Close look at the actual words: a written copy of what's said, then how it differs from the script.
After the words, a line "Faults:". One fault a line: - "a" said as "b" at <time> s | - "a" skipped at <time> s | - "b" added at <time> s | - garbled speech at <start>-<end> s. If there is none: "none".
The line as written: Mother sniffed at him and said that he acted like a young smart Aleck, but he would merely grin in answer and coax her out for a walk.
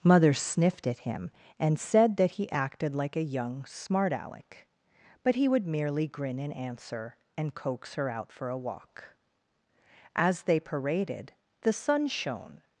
Mother sniffed at him and said that he acted like a young smart Aleck, but he would merely grin in answer and coax her out for a walk. As they paraded, the sun shone
Faults:
- "As they paraded the sun shone" added at 10.2 s